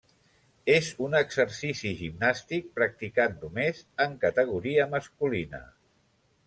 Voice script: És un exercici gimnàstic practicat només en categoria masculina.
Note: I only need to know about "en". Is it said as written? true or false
true